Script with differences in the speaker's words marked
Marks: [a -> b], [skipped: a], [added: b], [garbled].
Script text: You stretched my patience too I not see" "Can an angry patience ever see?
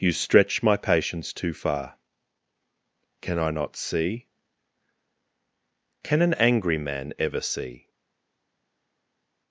You [stretched -> stretch] my patience too [added: far Can] I not see" "Can an angry [patience -> man] ever see?